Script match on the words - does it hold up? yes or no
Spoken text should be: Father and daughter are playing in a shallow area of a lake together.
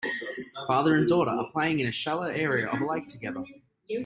yes